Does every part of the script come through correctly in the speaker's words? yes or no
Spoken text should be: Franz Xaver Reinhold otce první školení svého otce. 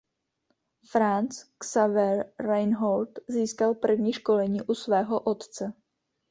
no